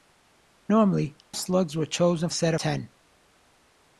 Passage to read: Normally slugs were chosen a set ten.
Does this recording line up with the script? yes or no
yes